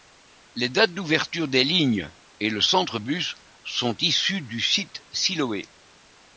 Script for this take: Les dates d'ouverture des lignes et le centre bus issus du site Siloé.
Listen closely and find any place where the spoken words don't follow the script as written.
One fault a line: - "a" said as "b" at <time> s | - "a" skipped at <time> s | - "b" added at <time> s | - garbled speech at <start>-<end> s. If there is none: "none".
- "sont" added at 3.6 s